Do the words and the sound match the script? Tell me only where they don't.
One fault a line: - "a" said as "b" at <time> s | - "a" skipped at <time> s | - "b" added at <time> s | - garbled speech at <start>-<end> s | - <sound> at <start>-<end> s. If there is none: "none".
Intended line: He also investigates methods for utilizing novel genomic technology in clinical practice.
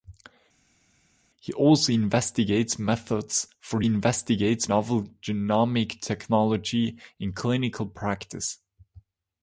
- "utilizing" said as "investigates" at 3.8 s